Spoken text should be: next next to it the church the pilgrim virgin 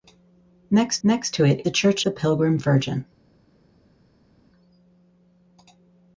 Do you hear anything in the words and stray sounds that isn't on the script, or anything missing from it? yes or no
no